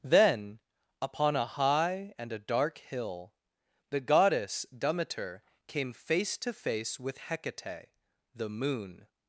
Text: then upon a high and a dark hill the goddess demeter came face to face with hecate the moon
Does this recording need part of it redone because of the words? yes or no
no